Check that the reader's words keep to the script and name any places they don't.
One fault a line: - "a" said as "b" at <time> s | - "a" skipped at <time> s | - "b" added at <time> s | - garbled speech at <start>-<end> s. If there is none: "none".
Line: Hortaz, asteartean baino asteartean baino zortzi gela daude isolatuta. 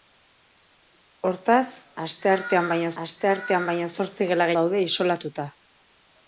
none